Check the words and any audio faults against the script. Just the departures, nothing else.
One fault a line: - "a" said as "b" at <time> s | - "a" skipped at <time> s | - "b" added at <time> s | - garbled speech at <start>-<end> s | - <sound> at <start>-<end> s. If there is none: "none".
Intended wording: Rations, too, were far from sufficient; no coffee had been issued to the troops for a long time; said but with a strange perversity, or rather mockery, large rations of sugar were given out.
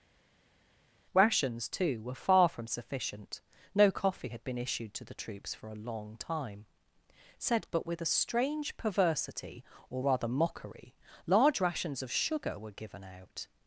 none